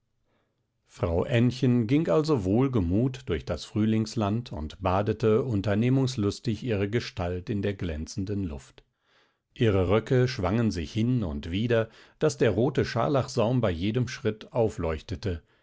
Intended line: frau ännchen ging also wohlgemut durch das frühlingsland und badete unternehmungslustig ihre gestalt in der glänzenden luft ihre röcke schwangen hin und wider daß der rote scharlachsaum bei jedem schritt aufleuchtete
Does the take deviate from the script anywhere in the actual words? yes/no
yes